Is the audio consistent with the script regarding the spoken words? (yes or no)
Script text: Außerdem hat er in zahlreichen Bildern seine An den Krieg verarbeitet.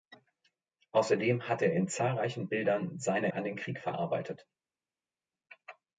yes